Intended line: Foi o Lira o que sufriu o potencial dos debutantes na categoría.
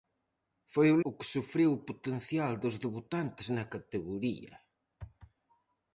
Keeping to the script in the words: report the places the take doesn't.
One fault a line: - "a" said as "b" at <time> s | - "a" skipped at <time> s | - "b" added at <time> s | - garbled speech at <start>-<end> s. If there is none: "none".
- "Lira" skipped at 1.0 s